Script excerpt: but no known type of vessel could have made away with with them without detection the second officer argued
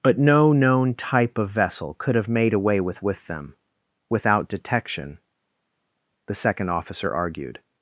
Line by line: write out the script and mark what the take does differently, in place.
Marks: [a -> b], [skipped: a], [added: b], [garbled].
but no known type of vessel could have made away with with them without detection the second officer argued